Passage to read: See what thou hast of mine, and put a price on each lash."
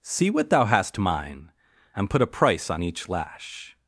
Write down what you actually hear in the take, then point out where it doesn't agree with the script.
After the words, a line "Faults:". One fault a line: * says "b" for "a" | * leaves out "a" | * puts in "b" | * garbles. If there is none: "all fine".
See what thou hast mine, and put a price on each lash."
Faults:
* leaves out "of"